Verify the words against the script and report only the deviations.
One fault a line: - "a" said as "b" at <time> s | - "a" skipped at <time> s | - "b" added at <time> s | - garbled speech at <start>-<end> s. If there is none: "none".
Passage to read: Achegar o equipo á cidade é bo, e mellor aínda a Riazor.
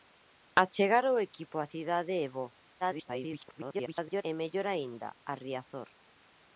- garbled speech at 2.8-4.2 s